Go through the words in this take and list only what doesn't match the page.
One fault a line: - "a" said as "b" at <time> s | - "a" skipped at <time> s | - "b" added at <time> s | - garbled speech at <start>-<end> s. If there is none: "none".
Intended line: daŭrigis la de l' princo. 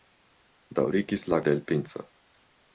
none